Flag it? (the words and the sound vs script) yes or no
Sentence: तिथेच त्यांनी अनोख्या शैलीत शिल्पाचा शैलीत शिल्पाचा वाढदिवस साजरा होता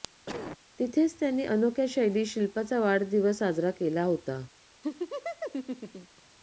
yes